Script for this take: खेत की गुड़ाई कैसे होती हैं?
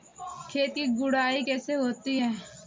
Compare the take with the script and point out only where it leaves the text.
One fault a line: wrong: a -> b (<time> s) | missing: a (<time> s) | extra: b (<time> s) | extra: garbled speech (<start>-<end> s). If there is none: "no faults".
no faults